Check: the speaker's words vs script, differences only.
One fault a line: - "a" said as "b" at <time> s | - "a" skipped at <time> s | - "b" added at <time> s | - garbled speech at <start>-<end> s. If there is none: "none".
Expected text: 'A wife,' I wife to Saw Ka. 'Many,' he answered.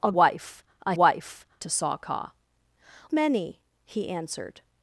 none